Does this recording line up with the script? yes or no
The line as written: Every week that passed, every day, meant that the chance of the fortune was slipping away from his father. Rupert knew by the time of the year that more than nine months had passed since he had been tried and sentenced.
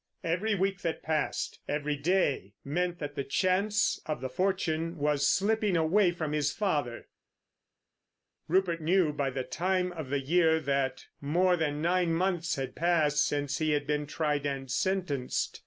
yes